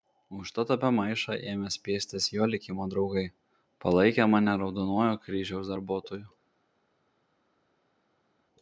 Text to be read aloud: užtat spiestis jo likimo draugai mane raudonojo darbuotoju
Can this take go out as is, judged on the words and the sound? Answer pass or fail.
fail